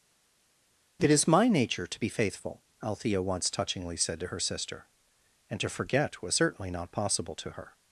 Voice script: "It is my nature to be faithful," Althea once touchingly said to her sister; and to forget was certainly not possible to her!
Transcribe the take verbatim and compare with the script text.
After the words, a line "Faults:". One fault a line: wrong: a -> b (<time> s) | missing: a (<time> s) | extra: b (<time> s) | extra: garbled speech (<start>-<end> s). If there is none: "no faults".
"It is my nature to be faithful," Althea once touchingly said to her sister; and to forget was certainly not possible to her!
Faults:
no faults